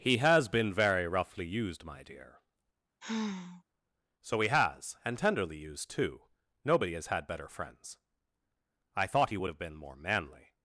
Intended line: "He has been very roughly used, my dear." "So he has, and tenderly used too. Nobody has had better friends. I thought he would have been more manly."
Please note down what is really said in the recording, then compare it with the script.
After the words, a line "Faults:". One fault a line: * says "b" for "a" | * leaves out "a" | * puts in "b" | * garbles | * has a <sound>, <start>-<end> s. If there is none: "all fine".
"He has been very roughly used, my dear." "So he has, and tenderly used too. Nobody has had better friends. I thought he would have been more manly."
Faults:
* has a sigh, 3.0-3.6 s